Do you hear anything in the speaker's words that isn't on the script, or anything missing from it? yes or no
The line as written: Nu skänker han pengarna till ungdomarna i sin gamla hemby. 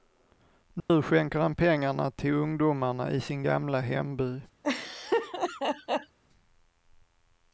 no